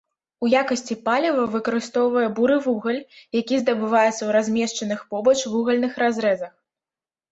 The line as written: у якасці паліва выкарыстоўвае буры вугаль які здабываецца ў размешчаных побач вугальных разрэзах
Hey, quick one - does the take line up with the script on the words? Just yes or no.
yes